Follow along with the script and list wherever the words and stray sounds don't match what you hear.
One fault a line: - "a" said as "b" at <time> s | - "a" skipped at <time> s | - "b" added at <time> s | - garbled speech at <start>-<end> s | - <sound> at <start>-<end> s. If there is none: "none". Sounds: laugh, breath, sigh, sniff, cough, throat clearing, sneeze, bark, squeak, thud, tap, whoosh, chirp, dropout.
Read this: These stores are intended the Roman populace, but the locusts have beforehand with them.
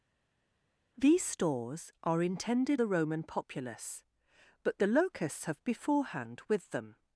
none